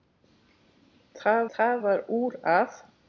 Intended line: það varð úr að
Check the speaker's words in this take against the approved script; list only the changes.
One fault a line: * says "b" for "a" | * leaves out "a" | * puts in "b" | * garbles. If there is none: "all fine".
* puts in "það"